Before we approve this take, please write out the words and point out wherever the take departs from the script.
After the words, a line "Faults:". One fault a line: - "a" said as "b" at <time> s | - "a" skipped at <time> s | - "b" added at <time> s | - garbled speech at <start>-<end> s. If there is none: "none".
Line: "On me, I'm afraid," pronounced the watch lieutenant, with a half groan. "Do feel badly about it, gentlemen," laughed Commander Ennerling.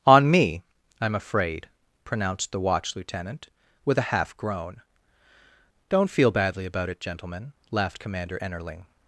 "On me, I'm afraid," pronounced the watch lieutenant, with a half groan. "Don't feel badly about it, gentlemen," laughed Commander Ennerling.
Faults:
- "Do" said as "Don't" at 5.9 s